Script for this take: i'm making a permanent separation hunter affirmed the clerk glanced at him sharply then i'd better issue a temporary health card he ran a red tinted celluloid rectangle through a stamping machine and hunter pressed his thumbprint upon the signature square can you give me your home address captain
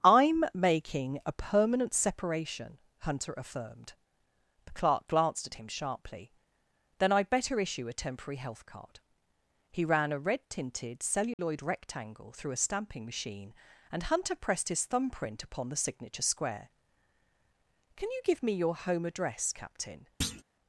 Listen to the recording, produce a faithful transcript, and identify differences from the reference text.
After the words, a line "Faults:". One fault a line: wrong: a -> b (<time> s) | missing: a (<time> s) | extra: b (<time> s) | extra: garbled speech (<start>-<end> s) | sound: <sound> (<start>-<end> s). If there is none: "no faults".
i'm making a permanent separation hunter affirmed the clerk glanced at him sharply then i'd better issue a temporary health card he ran a red tinted celluloid rectangle through a stamping machine and hunter pressed his thumbprint upon the signature square can you give me your home address captain
Faults:
sound: dropout (11.3-11.4 s)
sound: thud (20.2-20.4 s)